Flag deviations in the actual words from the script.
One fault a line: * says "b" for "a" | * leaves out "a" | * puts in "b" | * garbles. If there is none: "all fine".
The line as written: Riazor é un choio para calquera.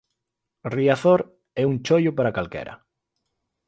all fine